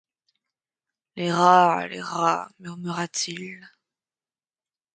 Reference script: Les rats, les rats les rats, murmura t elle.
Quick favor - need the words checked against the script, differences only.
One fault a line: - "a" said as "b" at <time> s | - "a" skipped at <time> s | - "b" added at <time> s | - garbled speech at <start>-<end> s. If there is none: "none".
- "les rats" skipped at 2.5 s
- "elle" said as "il" at 3.3 s